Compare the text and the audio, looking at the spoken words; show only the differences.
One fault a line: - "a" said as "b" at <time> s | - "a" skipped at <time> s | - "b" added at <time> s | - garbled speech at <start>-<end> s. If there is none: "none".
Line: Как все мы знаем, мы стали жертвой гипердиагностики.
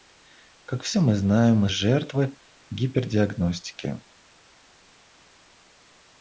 - "стали" skipped at 1.7 s